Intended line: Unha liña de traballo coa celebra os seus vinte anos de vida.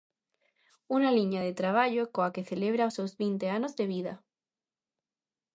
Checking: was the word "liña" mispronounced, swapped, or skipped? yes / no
no